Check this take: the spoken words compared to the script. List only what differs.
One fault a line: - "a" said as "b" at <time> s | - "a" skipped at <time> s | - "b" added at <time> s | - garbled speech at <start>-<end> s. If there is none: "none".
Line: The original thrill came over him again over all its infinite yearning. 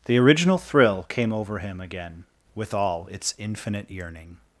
- "over" said as "with" at 2.5 s